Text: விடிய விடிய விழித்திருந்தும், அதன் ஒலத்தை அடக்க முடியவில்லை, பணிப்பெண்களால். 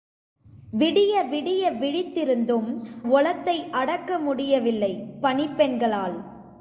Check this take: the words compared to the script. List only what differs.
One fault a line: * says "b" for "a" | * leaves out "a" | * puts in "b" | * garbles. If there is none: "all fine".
* leaves out "அதன்"